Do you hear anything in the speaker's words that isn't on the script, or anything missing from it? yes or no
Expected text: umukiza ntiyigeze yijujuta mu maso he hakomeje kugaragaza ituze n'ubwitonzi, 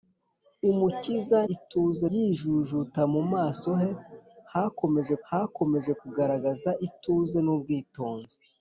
yes